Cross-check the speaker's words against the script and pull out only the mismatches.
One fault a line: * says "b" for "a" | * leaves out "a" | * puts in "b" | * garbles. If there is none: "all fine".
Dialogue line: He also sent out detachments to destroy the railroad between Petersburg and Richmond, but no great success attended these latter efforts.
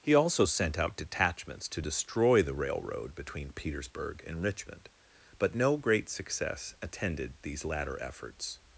all fine